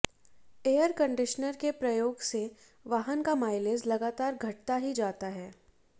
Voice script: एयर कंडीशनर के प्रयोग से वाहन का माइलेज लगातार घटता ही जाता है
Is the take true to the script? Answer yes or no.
yes